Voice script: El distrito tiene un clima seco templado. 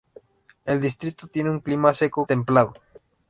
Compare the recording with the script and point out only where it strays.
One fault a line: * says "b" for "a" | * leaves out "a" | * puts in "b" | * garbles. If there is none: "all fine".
all fine